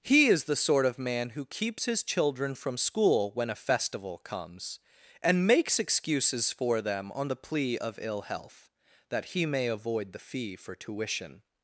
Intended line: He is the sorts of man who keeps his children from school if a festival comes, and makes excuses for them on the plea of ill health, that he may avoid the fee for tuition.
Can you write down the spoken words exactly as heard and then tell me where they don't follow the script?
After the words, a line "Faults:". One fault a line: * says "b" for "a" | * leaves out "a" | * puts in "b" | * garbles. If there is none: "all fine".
He is the sort of man who keeps his children from school when a festival comes, and makes excuses for them on the plea of ill health, that he may avoid the fee for tuition.
Faults:
* says "sort" for "sorts"
* says "when" for "if"